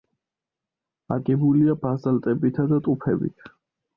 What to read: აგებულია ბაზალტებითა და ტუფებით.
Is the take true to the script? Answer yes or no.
yes